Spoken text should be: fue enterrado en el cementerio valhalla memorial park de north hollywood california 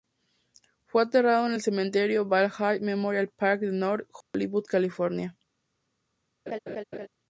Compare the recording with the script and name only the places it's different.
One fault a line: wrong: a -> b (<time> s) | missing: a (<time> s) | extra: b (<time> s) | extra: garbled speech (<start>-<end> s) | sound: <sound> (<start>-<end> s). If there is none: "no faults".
sound: dropout (4.2-4.3 s)
sound: laugh (6.5-7.1 s)